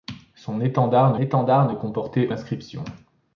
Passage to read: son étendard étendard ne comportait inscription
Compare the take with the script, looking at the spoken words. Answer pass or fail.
pass